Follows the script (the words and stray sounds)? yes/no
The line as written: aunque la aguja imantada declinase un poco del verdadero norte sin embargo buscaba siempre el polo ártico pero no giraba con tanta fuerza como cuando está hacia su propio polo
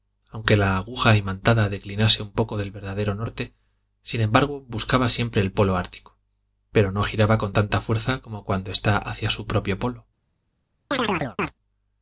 no